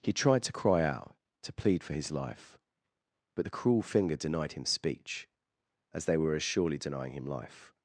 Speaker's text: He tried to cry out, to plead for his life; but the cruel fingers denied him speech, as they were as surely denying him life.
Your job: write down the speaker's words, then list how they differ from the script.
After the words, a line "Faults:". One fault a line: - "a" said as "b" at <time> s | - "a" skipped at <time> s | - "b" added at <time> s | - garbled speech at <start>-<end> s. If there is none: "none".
He tried to cry out, to plead for his life; but the cruel finger denied him speech, as they were as surely denying him life.
Faults:
- "fingers" said as "finger" at 3.8 s